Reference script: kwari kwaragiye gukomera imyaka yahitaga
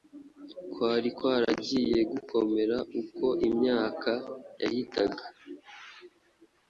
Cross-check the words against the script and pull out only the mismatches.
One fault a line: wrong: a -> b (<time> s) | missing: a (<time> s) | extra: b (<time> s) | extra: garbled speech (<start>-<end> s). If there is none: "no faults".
extra: uko (3.0 s)